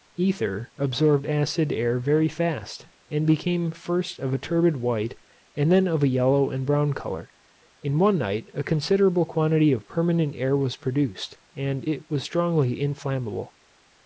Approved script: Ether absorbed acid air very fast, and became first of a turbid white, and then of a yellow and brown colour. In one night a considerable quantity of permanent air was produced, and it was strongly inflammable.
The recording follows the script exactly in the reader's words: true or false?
true